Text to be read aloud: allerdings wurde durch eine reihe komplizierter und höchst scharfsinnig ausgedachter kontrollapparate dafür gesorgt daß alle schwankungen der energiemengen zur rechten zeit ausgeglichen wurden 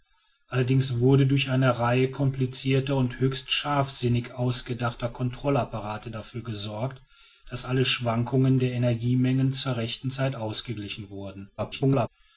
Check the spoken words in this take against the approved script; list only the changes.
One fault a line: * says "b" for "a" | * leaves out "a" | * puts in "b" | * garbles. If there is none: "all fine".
* garbles